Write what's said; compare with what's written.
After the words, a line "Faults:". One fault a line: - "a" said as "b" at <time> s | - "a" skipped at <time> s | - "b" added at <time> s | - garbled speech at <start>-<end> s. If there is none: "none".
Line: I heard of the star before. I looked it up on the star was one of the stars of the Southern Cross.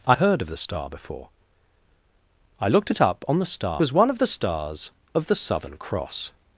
I heard of the star before. I looked it up on the star was one of the stars of the Southern Cross.
Faults:
none